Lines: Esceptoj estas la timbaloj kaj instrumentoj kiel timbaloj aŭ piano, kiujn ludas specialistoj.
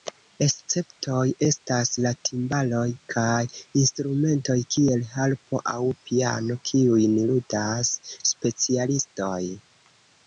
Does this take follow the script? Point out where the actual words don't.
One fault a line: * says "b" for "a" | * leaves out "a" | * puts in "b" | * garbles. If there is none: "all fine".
* says "harpo" for "timbaloj"